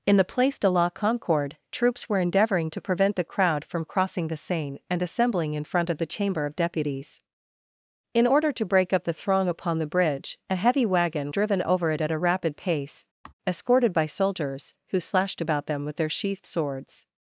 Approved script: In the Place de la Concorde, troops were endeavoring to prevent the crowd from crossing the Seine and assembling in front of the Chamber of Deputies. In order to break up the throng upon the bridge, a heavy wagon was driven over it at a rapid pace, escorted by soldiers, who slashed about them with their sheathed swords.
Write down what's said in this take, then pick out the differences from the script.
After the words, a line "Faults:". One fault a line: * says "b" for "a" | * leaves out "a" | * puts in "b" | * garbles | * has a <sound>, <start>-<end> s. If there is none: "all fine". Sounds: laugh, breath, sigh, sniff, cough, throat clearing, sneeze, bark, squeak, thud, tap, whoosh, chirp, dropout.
In the Place de la Concorde, troops were endeavoring to prevent the crowd from crossing the Seine and assembling in front of the Chamber of Deputies. In order to break up the throng upon the bridge, a heavy wagon driven over it at a rapid pace, escorted by soldiers, who slashed about them with their sheathed swords.
Faults:
* leaves out "was"
* has a sigh, 13.2-13.3 s